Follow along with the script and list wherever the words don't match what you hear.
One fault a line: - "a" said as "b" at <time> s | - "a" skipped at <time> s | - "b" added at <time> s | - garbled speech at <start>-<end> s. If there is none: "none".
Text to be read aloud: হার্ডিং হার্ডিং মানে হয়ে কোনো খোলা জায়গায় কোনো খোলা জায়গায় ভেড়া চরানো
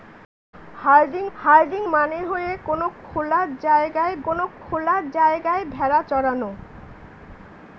none